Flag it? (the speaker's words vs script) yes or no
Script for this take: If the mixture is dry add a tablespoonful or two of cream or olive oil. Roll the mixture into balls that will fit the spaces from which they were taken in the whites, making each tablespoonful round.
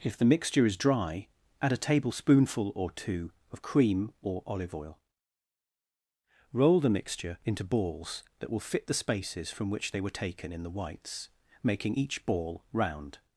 yes